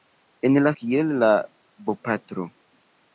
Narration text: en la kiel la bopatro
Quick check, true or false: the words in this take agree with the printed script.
true